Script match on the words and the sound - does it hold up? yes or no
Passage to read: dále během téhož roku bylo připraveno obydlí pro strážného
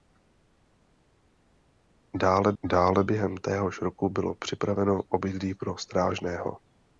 no